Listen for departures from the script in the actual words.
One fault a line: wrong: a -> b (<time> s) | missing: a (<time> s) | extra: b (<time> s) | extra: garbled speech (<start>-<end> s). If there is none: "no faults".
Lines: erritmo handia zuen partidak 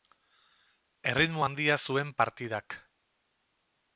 no faults